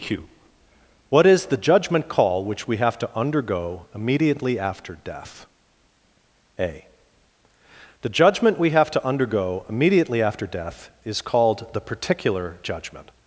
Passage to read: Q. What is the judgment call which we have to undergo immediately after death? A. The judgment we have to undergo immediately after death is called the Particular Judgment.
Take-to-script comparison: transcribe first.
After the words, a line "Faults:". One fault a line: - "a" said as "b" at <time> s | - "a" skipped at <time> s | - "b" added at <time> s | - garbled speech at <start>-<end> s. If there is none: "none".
Q. What is the judgment call which we have to undergo immediately after death? A. The judgment we have to undergo immediately after death is called the Particular Judgment.
Faults:
none